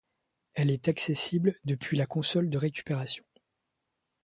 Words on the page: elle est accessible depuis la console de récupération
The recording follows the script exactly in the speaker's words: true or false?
true